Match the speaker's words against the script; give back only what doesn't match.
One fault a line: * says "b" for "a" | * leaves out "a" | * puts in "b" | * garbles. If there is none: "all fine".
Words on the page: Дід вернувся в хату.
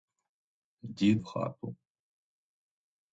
* leaves out "вернувся"